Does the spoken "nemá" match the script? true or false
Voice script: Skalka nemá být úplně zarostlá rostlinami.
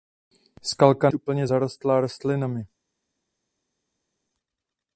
false